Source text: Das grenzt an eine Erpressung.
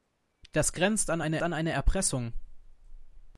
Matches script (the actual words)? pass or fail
fail